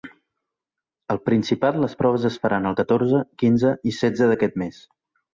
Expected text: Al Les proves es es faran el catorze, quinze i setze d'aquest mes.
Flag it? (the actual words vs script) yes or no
yes